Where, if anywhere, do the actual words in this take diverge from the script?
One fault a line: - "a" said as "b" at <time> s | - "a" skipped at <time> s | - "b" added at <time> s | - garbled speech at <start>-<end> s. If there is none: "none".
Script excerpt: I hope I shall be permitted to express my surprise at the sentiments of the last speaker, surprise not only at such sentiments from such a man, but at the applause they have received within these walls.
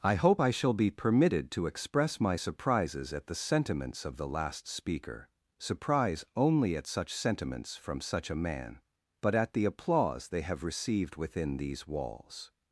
- "surprise" said as "surprises" at 2.4 s
- "not" skipped at 6.2 s